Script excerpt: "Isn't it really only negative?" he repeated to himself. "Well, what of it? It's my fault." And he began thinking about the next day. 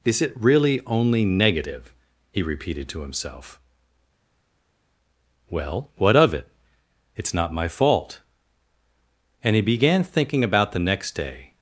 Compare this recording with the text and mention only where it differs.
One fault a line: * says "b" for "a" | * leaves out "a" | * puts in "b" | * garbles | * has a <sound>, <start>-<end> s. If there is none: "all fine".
* says "Is" for "Isn't"
* puts in "not"